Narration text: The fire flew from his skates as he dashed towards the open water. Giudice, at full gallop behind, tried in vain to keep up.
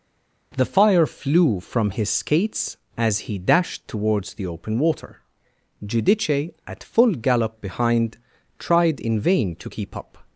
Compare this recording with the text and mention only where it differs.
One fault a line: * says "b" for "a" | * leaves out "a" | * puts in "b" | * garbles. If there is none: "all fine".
all fine